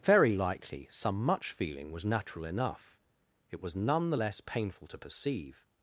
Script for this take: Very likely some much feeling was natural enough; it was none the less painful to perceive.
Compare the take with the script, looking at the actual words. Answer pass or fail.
pass